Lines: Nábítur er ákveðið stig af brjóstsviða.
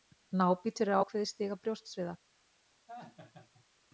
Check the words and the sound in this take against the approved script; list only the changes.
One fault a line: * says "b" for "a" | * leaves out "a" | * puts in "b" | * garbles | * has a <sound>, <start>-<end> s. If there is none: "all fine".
* has a laugh, 2.9-3.7 s